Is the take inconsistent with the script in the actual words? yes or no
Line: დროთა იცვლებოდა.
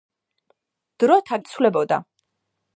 no